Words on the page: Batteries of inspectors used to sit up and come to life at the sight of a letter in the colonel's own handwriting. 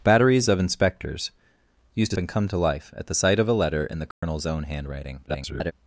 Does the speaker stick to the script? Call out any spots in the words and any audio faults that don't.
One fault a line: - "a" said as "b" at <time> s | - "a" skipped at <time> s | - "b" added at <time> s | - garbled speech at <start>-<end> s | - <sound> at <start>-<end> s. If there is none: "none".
- "sit up" skipped at 2.2 s
- dropout at 4.1-4.2 s
- garbled speech at 5.3-5.7 s